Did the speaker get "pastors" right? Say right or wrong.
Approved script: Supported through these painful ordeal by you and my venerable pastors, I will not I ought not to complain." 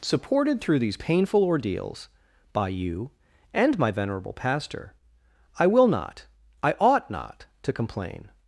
wrong